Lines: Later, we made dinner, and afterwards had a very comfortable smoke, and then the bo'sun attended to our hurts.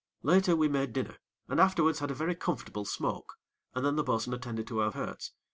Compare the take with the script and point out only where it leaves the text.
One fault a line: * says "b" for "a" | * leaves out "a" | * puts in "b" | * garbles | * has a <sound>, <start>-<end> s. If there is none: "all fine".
all fine